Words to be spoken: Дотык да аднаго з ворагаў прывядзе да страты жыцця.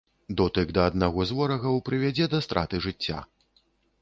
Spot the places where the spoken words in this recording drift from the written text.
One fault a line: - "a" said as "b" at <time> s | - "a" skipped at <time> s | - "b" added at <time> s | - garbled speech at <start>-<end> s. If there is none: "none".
none